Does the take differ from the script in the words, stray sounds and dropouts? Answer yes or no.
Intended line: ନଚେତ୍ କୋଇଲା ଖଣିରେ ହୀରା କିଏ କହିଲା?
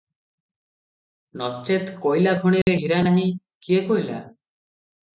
yes